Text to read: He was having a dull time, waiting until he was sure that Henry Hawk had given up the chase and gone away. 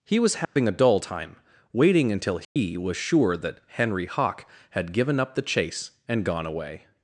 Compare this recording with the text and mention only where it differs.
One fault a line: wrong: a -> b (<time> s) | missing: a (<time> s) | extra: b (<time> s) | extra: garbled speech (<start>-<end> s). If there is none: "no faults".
no faults